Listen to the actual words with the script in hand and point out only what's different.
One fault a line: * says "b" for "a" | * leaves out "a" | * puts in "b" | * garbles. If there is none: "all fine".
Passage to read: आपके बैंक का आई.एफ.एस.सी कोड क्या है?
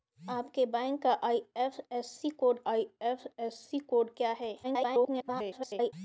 * puts in "आई.एफ.एस.सी कोड"
* garbles